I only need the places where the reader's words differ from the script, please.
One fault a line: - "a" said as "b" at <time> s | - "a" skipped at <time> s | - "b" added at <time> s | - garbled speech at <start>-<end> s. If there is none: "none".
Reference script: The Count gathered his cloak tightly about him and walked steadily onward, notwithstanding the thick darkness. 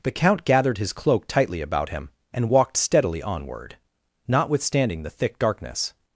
none